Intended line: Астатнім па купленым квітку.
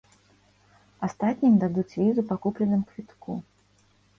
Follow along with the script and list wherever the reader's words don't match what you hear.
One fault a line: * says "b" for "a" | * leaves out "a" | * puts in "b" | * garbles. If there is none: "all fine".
* puts in "дадуць візу"